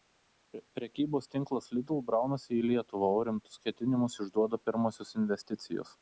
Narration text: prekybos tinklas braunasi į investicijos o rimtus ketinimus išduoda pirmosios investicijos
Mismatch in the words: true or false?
true